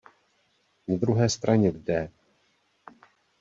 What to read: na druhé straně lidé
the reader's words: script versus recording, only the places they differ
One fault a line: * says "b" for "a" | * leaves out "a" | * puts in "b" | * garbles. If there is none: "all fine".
all fine